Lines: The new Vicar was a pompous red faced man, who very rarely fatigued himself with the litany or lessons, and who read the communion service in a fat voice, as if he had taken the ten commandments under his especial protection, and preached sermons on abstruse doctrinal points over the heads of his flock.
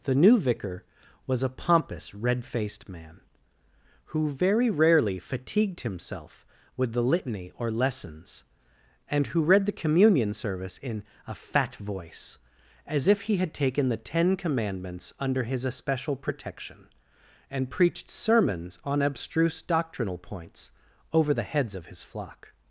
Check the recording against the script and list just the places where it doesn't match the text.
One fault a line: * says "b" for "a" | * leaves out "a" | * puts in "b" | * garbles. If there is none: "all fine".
all fine